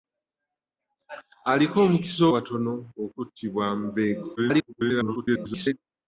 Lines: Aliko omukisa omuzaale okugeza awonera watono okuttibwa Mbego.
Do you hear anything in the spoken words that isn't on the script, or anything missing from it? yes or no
yes